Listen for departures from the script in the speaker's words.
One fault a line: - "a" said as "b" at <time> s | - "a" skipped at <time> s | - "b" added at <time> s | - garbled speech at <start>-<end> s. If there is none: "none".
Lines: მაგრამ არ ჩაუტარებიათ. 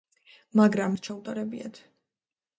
none